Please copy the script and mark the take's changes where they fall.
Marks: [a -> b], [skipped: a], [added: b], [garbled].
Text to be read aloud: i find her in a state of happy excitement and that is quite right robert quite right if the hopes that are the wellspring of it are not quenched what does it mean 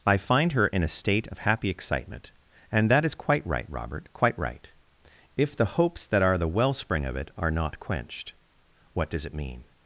i find her in a state of happy excitement and that is quite right robert quite right if the hopes that are the wellspring of it are not quenched what does it mean